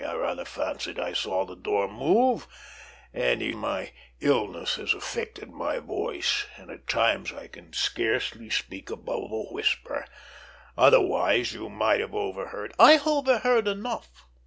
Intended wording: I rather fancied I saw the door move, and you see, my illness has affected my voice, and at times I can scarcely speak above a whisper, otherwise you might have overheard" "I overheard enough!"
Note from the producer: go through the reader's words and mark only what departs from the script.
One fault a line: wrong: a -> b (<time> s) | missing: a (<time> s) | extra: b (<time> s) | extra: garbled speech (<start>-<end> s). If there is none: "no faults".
missing: see (3.5 s)